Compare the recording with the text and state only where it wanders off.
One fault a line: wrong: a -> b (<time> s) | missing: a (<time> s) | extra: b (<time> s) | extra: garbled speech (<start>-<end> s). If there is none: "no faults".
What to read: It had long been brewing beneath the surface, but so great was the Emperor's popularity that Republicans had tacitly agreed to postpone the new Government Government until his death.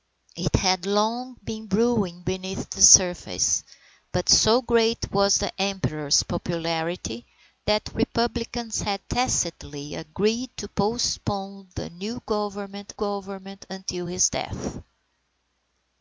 no faults